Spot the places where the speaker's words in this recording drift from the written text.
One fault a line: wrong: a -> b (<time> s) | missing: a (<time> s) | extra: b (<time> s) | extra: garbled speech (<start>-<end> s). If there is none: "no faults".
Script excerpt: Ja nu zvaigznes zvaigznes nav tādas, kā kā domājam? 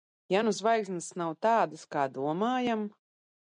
missing: zvaigznes (1.1 s)
missing: kā (2.1 s)